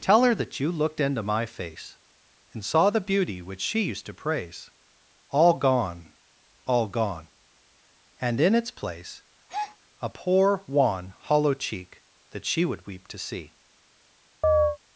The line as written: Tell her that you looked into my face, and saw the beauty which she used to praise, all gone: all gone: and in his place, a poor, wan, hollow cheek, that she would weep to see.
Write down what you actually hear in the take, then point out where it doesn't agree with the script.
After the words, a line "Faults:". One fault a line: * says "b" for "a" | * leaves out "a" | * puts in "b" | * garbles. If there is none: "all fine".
Tell her that you looked into my face, and saw the beauty which she used to praise, all gone: all gone: and in its place, a poor, wan, hollow cheek, that she would weep to see.
Faults:
* says "its" for "his"